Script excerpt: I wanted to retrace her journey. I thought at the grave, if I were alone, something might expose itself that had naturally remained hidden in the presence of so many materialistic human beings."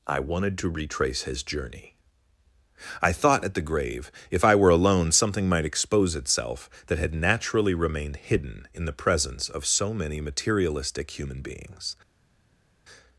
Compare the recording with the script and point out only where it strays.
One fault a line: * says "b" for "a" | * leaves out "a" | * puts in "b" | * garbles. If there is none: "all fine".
* says "his" for "her"